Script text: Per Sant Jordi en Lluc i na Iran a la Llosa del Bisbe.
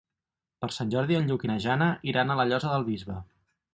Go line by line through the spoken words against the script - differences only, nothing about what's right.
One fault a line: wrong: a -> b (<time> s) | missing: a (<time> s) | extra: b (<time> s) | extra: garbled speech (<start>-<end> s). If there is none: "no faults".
extra: Jana (1.6 s)